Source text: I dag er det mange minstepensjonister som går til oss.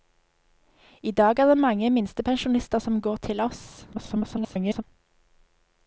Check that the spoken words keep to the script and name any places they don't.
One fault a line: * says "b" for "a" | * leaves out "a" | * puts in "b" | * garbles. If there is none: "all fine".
* garbles